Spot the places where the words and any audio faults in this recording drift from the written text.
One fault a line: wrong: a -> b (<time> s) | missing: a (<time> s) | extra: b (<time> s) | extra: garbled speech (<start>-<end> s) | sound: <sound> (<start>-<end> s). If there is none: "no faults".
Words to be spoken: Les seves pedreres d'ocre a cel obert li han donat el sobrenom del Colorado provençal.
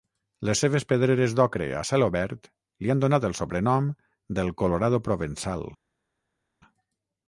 no faults